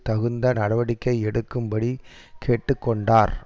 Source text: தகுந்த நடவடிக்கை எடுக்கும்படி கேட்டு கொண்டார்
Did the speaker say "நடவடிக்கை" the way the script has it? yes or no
yes